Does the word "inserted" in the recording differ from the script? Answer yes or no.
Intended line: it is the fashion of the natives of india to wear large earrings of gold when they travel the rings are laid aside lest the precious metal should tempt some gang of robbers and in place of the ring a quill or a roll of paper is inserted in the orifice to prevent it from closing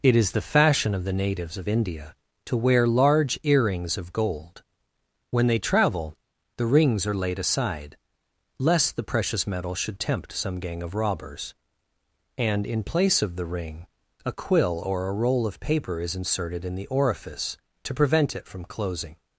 no